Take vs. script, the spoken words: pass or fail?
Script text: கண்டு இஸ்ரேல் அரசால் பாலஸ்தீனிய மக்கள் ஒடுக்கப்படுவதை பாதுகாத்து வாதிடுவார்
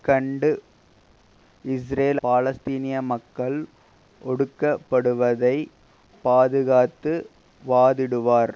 fail